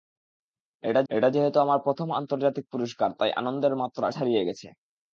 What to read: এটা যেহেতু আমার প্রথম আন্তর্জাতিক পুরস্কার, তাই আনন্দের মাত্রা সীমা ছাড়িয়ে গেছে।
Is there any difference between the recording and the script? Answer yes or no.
yes